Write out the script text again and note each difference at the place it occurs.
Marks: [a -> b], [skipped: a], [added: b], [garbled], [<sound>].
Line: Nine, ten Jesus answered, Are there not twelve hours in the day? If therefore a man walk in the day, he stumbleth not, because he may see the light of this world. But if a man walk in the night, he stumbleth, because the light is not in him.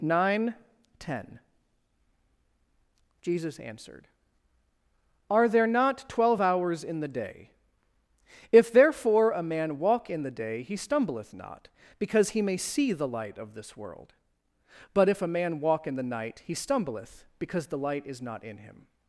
Nine, ten Jesus answered, Are there not twelve hours in the day? If therefore a man walk in the day, he stumbleth not, because he may see the light of this world. But if a man walk in the night, he stumbleth, because the light is not in him.